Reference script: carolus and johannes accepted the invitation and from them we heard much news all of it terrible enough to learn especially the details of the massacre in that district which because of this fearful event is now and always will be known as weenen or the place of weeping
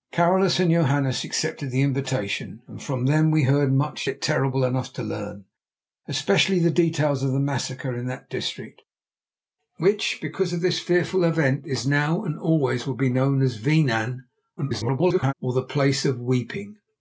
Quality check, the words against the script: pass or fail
fail